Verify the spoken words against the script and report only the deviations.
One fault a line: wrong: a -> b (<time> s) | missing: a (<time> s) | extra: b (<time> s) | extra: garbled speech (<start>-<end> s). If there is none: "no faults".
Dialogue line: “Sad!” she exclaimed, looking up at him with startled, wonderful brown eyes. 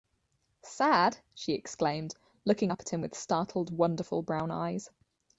no faults